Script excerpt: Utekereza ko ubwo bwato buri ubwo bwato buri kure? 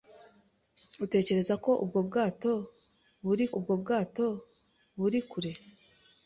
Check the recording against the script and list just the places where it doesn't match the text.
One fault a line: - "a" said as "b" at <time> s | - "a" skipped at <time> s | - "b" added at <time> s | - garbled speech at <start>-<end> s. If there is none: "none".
none